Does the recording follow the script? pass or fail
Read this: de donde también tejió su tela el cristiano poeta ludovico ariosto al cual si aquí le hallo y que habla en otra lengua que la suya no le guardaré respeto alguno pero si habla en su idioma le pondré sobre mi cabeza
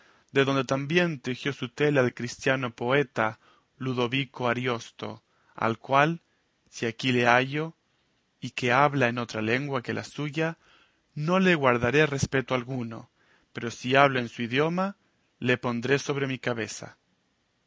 pass